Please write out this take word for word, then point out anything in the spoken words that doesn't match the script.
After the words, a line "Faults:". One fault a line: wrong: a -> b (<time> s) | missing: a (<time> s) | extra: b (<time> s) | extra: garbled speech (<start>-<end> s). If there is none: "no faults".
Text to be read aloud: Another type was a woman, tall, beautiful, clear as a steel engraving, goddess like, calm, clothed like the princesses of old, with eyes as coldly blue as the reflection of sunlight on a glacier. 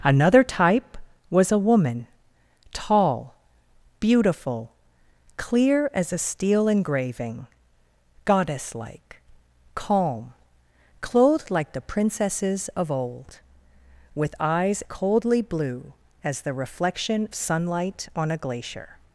Another type was a woman, tall, beautiful, clear as a steel engraving, goddess like, calm, clothed like the princesses of old, with eyes coldly blue as the reflection sunlight on a glacier.
Faults:
missing: as (14.8 s)
missing: of (17.3 s)